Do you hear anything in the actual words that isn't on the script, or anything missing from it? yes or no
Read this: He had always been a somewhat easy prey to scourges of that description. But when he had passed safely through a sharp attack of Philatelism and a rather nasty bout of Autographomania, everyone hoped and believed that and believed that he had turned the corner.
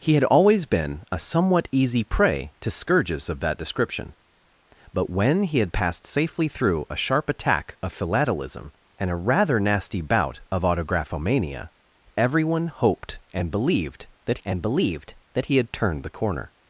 no